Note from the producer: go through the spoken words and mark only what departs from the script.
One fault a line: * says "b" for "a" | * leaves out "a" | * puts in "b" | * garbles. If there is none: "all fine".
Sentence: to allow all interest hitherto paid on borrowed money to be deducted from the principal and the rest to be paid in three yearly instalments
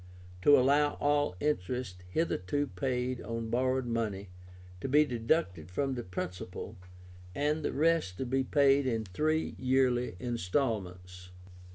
all fine